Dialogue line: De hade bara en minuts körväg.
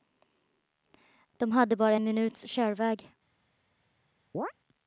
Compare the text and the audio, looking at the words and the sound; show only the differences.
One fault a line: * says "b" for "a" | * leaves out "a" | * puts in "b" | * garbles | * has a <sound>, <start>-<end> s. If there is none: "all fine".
* has a chirp, 4.3-4.5 s